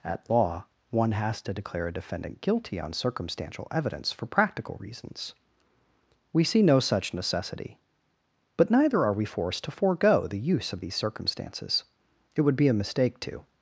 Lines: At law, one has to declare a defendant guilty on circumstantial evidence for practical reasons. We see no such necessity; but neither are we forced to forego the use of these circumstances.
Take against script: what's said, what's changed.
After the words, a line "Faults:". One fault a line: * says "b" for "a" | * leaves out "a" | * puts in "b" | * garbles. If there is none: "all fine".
At law, one has to declare a defendant guilty on circumstantial evidence for practical reasons. We see no such necessity; but neither are we forced to forego the use of these circumstances. It would be a mistake to
Faults:
* puts in "It would be a mistake to"